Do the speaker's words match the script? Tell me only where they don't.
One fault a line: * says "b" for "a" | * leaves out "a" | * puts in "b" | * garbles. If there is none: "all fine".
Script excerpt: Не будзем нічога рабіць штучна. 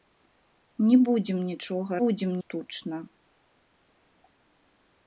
* says "будзем" for "рабіць"